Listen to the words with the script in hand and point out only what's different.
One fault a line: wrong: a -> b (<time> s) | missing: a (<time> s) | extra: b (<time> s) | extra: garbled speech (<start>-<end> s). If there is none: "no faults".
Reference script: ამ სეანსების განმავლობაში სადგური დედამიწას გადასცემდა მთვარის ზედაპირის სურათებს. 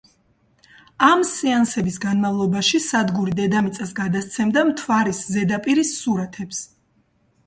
no faults